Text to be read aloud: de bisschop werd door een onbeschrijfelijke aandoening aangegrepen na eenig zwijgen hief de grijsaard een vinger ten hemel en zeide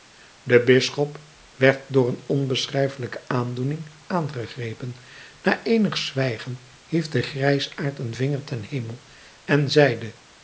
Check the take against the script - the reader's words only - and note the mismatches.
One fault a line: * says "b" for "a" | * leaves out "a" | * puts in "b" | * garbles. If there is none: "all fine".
all fine